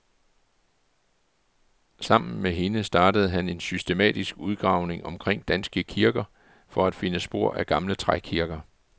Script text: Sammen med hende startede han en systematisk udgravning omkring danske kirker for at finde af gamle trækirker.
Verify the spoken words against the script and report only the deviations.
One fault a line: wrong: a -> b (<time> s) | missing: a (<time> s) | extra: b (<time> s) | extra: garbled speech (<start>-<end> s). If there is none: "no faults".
extra: spor (7.2 s)